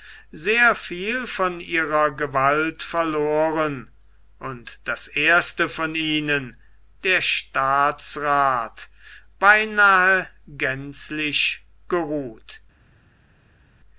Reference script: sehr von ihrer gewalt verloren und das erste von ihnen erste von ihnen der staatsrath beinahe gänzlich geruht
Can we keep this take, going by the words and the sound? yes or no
no